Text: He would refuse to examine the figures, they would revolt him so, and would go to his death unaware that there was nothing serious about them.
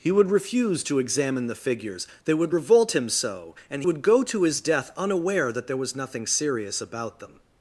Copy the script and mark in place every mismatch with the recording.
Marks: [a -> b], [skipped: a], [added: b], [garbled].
He would refuse to examine the figures, they would revolt him so, and would go to his death unaware that there was nothing serious about them.